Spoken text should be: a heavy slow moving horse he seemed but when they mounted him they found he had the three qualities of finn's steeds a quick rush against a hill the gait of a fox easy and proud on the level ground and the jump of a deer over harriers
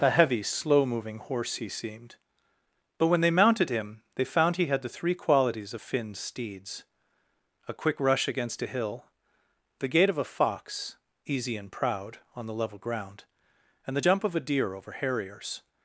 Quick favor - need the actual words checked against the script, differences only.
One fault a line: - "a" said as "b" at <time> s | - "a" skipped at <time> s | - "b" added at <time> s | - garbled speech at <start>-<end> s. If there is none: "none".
none